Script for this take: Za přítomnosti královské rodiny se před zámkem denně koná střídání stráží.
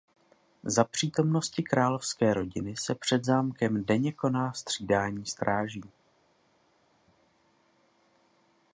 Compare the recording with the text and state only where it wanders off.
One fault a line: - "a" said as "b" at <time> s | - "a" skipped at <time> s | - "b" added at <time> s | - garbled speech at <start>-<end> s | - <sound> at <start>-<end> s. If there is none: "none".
none